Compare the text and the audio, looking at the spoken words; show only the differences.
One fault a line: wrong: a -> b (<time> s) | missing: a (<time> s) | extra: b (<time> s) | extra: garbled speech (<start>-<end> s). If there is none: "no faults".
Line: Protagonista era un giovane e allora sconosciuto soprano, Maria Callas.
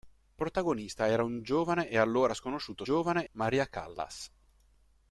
wrong: soprano -> giovane (2.8 s)